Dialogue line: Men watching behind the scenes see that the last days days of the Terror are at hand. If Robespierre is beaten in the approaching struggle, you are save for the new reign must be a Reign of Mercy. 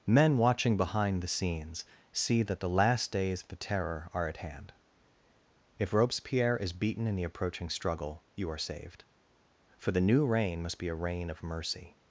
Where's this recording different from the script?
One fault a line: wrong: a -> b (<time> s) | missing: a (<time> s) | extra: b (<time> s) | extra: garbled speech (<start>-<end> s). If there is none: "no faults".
missing: days (3.4 s)
wrong: save -> saved (8.6 s)